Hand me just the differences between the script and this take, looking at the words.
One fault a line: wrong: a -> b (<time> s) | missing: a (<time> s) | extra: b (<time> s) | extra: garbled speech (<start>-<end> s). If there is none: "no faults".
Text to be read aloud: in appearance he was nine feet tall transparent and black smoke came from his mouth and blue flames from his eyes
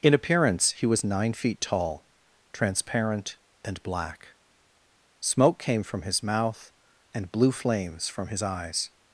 no faults